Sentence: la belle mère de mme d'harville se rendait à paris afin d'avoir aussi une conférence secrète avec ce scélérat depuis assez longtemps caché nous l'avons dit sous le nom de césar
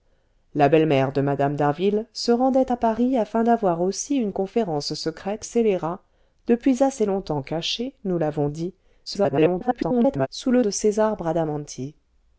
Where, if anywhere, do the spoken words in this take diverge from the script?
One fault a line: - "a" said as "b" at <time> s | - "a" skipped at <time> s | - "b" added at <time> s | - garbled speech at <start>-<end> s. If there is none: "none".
- "avec ce" skipped at 5.4 s
- garbled speech at 9.1-10.3 s
- "nom" skipped at 10.6 s